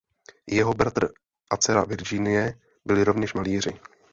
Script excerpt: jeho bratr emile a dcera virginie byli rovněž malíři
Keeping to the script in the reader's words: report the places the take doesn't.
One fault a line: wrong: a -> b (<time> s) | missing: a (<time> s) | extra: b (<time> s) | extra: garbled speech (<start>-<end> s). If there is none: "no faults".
missing: emile (1.1 s)